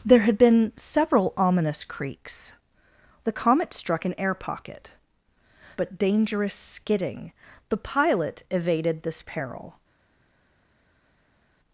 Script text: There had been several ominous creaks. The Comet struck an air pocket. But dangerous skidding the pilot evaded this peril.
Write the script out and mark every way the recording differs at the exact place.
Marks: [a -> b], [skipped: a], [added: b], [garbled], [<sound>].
There had been several ominous creaks. The Comet struck an air pocket. But dangerous skidding the pilot evaded this peril.